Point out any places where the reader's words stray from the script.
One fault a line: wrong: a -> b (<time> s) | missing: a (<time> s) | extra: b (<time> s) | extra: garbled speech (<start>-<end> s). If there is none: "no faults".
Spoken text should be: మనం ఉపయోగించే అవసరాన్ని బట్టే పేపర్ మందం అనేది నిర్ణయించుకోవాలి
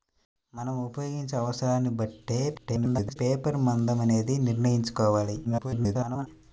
extra: garbled speech (2.5-3.2 s)
extra: garbled speech (5.4-6.3 s)